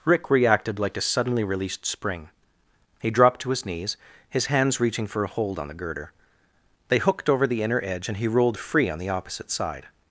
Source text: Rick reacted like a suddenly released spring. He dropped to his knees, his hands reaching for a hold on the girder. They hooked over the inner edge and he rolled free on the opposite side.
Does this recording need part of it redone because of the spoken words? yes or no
no